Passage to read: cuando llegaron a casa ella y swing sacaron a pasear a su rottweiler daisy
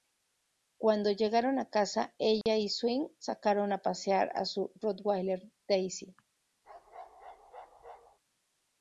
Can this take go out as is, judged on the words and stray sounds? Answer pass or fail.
fail